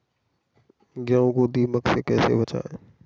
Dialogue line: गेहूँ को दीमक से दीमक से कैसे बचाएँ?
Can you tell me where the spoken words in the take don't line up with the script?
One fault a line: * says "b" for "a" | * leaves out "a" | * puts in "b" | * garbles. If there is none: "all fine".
* leaves out "दीमक से"